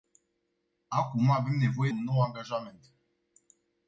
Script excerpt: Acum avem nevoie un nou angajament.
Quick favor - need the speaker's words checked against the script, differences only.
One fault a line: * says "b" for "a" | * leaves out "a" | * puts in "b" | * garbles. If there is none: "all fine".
all fine